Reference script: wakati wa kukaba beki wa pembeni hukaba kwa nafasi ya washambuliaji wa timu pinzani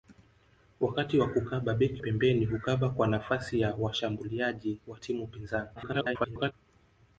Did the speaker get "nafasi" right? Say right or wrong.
right